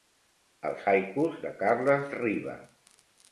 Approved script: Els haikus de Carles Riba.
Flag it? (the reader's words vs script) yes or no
no